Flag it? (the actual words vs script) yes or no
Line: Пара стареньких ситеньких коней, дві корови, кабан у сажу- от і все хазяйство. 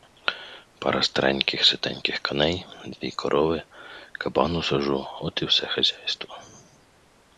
no